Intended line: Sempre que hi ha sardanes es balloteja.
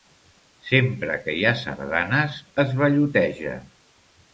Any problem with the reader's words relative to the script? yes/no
no